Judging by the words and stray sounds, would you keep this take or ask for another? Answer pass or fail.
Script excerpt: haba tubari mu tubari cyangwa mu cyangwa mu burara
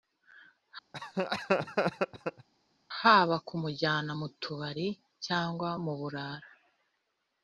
fail